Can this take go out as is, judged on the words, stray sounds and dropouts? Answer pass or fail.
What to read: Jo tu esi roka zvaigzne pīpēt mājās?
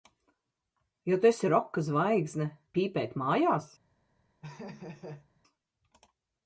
fail